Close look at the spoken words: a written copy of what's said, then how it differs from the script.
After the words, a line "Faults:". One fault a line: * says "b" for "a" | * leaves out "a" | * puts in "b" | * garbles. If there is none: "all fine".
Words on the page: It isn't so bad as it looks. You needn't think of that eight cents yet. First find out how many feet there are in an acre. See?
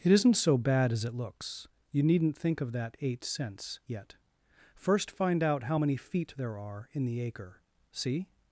It isn't so bad as it looks. You needn't think of that eight cents yet. First find out how many feet there are in the acre. See?
Faults:
* says "the" for "an"